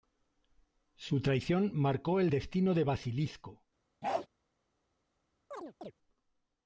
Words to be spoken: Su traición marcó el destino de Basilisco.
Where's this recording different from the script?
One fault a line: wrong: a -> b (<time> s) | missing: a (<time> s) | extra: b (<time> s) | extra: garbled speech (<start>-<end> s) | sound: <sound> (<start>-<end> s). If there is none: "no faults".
sound: bark (4.0-4.3 s)
sound: chirp (5.5-5.9 s)